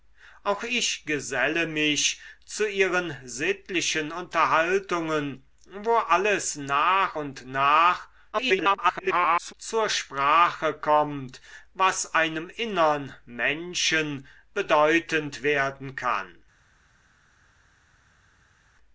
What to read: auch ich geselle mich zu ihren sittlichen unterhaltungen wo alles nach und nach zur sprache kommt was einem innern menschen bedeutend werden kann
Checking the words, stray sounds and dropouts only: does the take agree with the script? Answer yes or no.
no